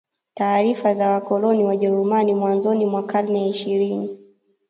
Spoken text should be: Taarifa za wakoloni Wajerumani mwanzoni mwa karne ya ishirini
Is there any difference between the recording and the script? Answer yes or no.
no